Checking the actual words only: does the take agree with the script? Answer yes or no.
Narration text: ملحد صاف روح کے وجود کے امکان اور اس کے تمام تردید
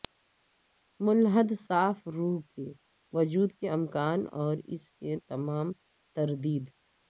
yes